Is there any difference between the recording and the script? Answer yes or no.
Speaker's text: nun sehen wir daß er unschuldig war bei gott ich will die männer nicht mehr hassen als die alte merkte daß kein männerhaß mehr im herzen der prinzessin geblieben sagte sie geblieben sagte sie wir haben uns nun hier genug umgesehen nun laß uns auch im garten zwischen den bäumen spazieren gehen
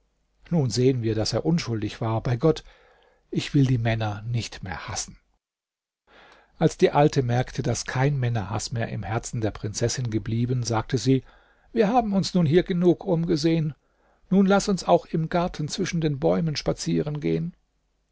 yes